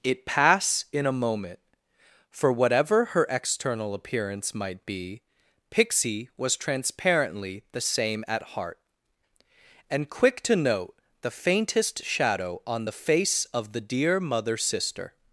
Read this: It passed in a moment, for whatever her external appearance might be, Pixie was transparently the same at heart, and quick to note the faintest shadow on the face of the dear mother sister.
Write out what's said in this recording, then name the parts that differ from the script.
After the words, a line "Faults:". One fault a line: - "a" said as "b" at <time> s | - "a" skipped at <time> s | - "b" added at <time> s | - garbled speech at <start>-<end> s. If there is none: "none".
It pass in a moment, for whatever her external appearance might be, Pixie was transparently the same at heart, and quick to note the faintest shadow on the face of the dear mother sister.
Faults:
- "passed" said as "pass" at 0.2 s